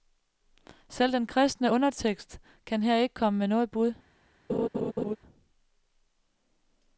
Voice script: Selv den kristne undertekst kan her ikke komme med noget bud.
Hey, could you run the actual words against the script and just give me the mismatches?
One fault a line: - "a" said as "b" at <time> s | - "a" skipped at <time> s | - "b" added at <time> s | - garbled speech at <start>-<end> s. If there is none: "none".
none